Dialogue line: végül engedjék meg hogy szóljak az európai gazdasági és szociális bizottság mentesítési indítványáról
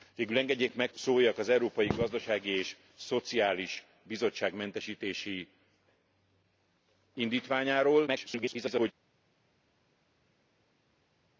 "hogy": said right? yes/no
no